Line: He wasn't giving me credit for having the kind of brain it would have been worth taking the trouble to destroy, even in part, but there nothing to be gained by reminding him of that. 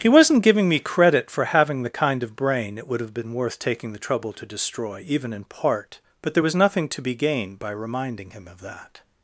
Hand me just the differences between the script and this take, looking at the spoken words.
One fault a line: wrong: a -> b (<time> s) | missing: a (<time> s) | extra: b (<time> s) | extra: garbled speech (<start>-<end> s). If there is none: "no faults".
extra: was (6.4 s)